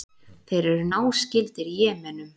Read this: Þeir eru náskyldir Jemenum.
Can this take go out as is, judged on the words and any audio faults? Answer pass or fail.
pass